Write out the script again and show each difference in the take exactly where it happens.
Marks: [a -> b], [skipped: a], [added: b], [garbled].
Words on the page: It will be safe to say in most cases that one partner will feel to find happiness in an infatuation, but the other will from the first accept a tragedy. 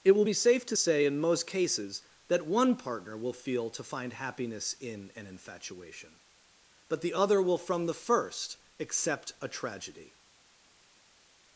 It will be safe to say in most cases that one partner will feel to find happiness in an infatuation, but the other will from the first accept a tragedy.